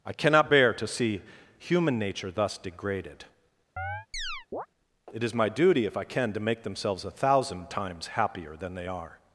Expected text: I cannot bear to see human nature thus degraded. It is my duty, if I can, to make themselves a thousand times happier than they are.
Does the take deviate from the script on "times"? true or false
false